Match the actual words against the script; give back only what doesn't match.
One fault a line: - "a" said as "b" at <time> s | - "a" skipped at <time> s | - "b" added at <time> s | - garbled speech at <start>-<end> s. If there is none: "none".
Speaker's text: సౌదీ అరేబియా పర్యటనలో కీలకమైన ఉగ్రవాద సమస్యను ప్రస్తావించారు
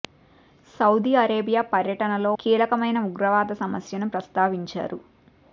none